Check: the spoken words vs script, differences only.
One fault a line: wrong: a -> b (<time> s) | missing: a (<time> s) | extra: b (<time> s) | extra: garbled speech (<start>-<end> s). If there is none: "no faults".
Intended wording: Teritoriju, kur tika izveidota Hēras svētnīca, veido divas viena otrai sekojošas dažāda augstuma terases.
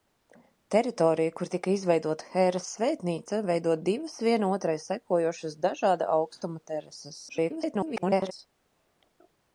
extra: garbled speech (7.3-8.3 s)